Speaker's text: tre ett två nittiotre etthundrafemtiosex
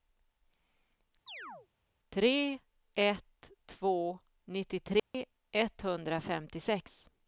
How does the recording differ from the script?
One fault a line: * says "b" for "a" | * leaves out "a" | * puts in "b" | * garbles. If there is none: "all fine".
all fine